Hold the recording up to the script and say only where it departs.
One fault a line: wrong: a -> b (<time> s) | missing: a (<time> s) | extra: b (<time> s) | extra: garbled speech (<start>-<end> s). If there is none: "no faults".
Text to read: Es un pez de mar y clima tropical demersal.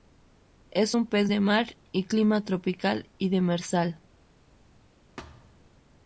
extra: y (3.2 s)